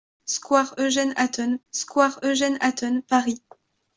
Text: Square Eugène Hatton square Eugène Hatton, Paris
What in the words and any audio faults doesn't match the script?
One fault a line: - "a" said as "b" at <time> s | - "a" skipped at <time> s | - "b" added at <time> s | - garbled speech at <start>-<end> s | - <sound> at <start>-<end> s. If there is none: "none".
none